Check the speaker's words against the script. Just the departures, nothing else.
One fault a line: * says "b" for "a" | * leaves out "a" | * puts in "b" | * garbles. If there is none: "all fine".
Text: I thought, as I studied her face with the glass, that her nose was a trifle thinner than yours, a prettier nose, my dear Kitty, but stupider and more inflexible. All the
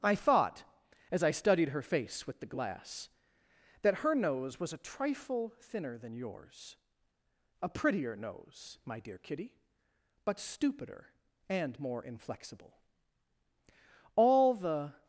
all fine